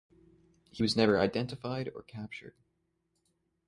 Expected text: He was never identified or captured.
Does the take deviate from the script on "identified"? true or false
false